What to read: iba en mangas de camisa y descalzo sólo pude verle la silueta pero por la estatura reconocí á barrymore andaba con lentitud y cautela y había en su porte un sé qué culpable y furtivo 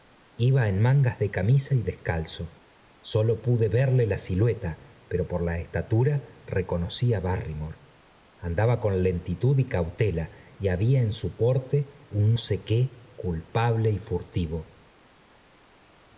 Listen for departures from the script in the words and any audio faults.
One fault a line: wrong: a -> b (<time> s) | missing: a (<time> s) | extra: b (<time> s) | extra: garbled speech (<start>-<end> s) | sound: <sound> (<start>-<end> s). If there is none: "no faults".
no faults